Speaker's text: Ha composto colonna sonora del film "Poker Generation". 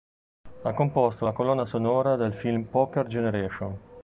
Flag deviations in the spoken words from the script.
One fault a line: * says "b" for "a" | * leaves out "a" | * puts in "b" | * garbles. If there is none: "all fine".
* puts in "la"